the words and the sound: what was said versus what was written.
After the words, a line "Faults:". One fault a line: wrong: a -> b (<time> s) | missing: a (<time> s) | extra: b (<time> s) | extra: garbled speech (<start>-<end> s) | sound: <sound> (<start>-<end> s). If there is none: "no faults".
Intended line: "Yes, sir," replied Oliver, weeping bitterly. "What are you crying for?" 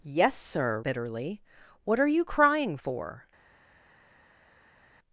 "Yes, sir," bitterly. "What are you crying for?"
Faults:
missing: replied Oliver weeping (0.8 s)